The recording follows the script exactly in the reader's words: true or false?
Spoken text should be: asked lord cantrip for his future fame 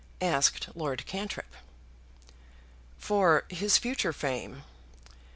true